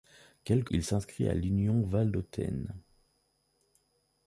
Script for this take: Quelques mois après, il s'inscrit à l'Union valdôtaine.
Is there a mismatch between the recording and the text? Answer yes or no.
yes